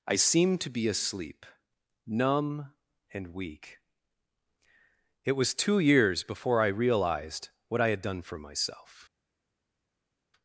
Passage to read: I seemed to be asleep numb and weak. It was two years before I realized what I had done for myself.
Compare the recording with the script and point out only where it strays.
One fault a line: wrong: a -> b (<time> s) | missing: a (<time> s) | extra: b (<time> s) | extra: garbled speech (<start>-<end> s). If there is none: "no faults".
no faults